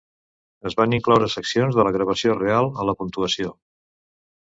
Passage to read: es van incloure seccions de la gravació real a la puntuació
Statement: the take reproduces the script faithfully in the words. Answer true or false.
true